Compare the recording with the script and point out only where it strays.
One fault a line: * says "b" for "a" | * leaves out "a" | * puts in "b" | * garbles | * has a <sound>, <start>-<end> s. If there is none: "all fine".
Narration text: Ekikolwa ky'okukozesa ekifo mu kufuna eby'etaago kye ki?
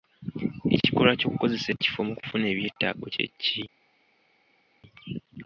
all fine